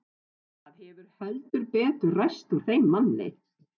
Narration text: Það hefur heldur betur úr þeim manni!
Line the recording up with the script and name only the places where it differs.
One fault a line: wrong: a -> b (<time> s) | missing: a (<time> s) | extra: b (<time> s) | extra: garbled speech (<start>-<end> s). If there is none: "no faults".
extra: ræst (2.2 s)